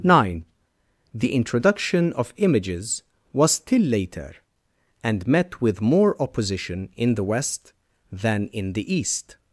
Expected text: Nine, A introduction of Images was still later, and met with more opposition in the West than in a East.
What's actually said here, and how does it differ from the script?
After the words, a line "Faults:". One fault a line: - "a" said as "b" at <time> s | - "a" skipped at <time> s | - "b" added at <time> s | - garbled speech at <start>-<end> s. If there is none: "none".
Nine, The introduction of Images was still later, and met with more opposition in the West than in the East.
Faults:
- "A" said as "The" at 1.1 s
- "a" said as "the" at 8.7 s